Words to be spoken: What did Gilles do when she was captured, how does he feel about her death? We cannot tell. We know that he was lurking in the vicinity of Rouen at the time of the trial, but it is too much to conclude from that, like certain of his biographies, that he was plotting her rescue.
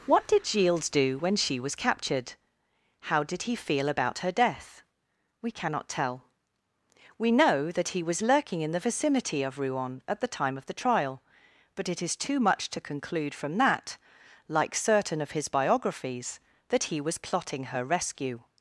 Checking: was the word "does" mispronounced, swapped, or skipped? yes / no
yes